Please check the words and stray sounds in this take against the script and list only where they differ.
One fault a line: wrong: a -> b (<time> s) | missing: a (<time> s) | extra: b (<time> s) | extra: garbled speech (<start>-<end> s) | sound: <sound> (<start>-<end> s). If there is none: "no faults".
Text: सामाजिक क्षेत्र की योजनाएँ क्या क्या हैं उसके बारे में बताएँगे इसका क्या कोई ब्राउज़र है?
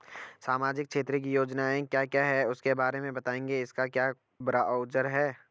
missing: कोई (4.1 s)